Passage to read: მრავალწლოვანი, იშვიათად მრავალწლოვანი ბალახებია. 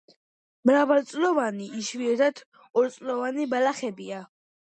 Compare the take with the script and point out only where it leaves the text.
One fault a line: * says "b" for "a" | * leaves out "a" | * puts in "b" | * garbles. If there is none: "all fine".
* says "ორწლოვანი" for "მრავალწლოვანი"